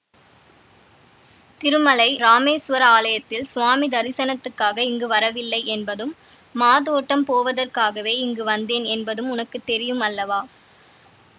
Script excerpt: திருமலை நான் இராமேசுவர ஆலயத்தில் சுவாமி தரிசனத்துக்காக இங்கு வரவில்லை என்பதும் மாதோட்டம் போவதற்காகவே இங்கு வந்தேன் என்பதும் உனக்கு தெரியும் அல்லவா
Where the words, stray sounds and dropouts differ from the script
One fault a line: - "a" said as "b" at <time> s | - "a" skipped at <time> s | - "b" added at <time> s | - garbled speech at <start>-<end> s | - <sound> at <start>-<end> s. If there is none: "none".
- "நான்" skipped at 2.1 s